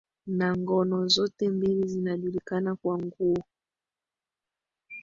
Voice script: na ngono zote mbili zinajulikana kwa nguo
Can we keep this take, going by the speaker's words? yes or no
yes